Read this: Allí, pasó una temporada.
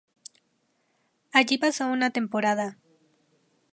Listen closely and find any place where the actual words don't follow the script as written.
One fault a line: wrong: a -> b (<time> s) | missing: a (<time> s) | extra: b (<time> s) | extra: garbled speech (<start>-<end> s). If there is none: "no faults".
no faults